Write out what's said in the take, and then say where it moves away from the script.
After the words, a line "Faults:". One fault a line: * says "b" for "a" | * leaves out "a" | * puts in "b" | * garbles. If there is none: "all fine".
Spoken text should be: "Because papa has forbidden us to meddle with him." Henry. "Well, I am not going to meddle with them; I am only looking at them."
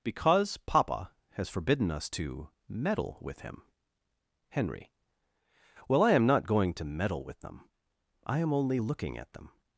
"Because papa has forbidden us to meddle with him." Henry. "Well, I am not going to meddle with them; I am only looking at them."
Faults:
all fine